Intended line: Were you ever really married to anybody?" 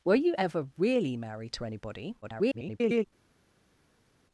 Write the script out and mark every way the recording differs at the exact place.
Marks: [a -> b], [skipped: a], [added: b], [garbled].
Were you ever really married to anybody?" [garbled]